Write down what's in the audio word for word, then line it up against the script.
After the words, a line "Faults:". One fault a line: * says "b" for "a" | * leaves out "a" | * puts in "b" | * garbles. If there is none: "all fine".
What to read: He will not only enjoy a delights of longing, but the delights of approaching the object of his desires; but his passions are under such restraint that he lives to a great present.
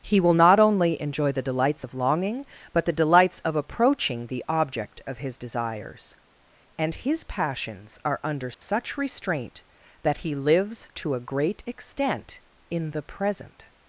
He will not only enjoy the delights of longing, but the delights of approaching the object of his desires; and his passions are under such restraint that he lives to a great extent in the present.
Faults:
* says "the" for "a"
* says "and" for "but"
* puts in "extent in the"